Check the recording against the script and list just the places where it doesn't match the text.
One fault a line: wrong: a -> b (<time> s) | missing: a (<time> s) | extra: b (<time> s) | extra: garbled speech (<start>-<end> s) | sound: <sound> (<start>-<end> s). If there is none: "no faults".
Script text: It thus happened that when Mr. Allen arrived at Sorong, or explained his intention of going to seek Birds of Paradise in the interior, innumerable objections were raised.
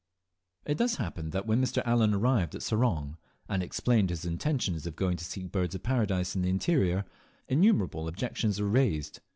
wrong: or -> and (3.5 s)